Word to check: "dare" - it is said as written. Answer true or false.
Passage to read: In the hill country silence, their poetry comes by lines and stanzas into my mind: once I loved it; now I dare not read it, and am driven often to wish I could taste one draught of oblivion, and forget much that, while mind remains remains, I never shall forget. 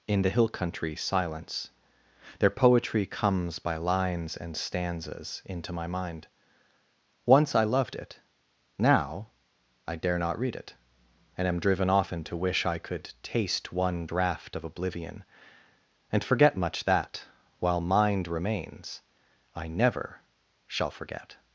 true